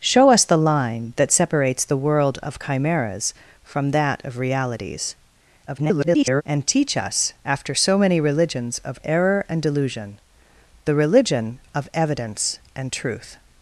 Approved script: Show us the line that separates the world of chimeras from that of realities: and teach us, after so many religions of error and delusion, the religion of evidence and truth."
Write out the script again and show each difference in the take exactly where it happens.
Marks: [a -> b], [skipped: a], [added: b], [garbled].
Show us the line that separates the world of chimeras from that of realities: [garbled] and teach us, after so many religions of error and delusion, the religion of evidence and truth."